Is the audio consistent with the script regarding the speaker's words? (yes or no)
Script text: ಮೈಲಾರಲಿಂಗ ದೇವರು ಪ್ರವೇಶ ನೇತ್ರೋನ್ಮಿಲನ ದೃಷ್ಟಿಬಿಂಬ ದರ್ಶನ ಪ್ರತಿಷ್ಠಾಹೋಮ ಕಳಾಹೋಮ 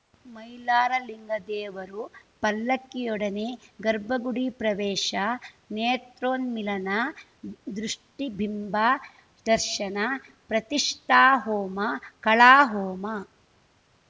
no